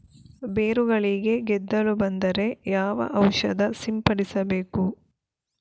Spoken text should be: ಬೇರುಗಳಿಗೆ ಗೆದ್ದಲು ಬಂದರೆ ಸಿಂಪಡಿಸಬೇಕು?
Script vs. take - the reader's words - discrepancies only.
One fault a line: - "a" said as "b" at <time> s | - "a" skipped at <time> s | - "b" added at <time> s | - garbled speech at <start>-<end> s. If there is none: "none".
- "ಯಾವ ಔಷಧ" added at 2.7 s